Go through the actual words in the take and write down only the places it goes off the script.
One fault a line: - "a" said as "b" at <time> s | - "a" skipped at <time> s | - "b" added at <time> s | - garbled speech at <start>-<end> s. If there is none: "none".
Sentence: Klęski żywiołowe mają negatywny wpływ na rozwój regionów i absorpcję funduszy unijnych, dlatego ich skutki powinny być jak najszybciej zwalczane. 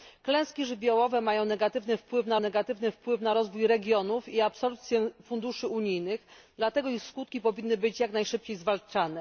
- "negatywny wpływ na" added at 2.4 s